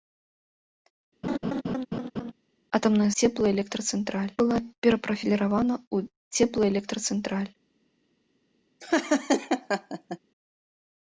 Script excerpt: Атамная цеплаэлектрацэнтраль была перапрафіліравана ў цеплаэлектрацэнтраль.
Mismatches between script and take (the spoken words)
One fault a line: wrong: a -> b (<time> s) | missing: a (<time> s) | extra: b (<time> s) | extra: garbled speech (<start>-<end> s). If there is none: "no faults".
no faults